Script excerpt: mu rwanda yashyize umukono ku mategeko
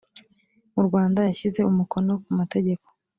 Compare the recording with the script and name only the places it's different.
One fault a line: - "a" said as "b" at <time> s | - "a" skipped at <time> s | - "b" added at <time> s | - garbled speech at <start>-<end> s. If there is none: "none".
none